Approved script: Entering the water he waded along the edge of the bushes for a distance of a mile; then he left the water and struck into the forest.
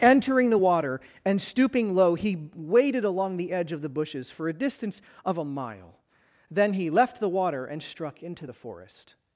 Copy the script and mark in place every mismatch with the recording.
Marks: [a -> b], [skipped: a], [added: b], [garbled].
Entering the water [added: and stooping low] he waded along the edge of the bushes for a distance of a mile; then he left the water and struck into the forest.